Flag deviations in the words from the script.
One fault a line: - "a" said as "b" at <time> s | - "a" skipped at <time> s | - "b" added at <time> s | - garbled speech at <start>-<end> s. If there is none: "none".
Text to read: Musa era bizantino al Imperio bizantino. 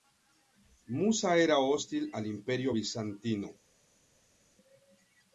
- "bizantino" said as "hostil" at 1.6 s